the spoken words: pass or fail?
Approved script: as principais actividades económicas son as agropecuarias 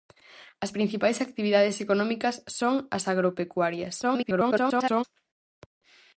fail